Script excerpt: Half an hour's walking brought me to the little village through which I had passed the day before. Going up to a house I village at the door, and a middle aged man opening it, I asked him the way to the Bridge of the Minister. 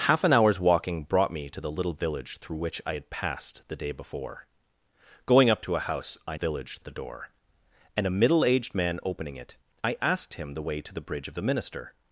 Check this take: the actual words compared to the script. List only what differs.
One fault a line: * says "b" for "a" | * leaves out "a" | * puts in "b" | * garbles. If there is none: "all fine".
all fine